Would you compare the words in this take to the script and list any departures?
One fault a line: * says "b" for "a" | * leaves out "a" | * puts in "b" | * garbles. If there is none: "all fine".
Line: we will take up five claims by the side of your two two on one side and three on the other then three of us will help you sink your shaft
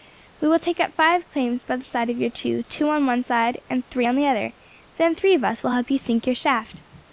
all fine